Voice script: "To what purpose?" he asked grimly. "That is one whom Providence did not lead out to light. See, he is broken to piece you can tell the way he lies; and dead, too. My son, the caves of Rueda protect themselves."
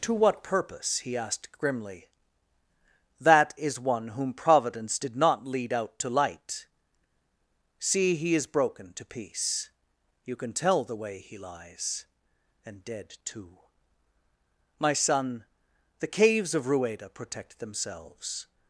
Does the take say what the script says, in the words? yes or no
yes